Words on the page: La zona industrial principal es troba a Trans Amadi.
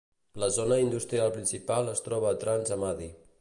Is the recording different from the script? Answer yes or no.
no